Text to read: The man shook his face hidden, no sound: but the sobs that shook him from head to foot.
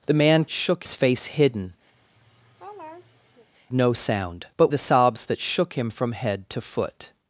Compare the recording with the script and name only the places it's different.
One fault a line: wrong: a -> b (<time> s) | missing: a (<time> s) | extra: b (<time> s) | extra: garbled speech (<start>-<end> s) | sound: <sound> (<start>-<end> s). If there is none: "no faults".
sound: laugh (1.9-3.5 s)